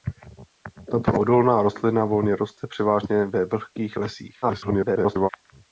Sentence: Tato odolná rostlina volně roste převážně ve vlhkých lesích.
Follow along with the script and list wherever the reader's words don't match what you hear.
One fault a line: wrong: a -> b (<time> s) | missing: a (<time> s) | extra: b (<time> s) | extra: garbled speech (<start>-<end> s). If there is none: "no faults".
extra: garbled speech (4.4-5.3 s)